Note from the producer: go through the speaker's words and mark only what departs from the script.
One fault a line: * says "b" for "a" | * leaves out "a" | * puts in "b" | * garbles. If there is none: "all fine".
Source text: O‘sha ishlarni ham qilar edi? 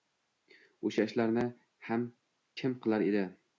* puts in "kim"